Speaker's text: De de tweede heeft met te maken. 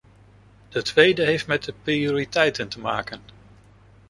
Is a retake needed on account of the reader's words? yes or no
yes